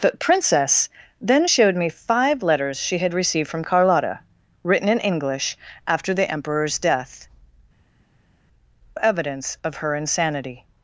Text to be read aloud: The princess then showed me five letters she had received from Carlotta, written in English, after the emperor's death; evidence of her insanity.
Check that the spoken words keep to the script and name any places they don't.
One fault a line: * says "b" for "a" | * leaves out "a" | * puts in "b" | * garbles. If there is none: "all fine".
all fine